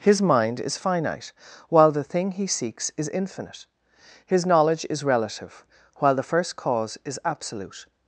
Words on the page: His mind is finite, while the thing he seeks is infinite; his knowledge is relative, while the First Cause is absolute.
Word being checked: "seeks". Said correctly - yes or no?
yes